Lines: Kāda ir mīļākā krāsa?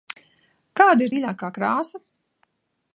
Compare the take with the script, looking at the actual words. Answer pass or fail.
pass